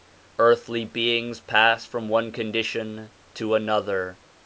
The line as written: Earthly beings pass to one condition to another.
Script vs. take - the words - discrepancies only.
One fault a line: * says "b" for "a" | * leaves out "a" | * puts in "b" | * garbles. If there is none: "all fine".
* says "from" for "to"